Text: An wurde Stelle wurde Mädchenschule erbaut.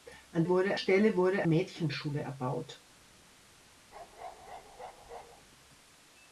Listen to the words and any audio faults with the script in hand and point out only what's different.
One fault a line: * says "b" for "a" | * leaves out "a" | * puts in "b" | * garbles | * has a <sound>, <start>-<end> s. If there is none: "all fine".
* has a bark, 3.9-5.5 s